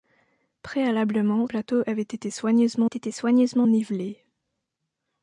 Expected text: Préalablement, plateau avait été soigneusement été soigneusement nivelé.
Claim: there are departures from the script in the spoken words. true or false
false